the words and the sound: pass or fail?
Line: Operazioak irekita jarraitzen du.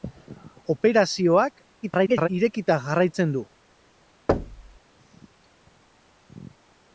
fail